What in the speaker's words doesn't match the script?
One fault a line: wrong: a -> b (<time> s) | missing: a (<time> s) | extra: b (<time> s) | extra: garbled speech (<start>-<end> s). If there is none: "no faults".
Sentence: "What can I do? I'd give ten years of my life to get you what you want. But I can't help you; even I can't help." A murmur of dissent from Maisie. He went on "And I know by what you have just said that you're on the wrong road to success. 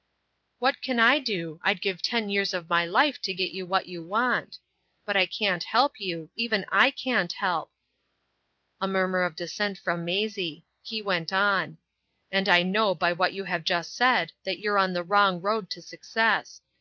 no faults